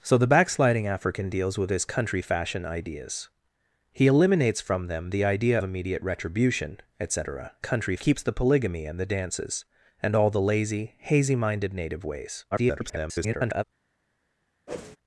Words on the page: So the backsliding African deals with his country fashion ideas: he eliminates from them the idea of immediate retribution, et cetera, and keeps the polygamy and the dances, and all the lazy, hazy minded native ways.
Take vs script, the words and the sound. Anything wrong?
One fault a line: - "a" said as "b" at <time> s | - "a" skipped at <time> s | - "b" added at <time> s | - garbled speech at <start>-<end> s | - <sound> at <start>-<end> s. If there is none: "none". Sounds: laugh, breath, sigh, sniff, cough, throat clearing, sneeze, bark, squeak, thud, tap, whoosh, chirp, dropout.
- "of" skipped at 5.6 s
- "and" said as "country" at 7.6 s
- garbled speech at 12.5-13.6 s
- whoosh at 14.7-15.0 s